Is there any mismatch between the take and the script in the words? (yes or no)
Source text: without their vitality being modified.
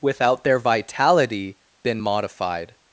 yes